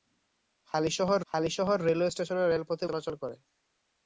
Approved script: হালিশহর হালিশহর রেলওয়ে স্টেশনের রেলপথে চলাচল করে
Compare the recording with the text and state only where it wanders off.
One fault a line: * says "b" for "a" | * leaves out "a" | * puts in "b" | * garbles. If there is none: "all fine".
all fine